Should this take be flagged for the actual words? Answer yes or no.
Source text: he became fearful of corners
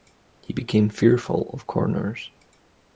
no